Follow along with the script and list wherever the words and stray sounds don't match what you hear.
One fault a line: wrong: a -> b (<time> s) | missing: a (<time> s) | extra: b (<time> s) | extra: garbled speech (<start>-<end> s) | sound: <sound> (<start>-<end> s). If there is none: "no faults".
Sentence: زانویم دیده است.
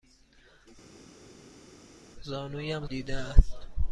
no faults